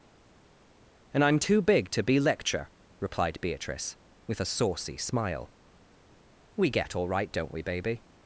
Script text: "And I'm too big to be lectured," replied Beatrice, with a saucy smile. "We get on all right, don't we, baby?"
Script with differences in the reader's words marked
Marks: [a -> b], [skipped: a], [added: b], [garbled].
"And I'm too big to be [lectured," -> lecture] replied Beatrice, with a saucy smile. "We get [skipped: on] all right, don't we, baby?"